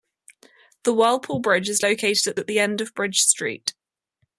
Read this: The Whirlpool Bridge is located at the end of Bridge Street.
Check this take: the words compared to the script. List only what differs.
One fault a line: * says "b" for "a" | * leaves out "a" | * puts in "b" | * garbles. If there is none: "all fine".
* puts in "at"